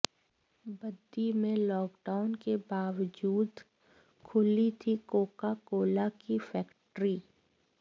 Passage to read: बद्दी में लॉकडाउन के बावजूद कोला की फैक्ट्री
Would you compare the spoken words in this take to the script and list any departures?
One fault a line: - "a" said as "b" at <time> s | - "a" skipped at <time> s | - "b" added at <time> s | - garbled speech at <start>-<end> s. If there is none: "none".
- "खुली थी कोका" added at 4.2 s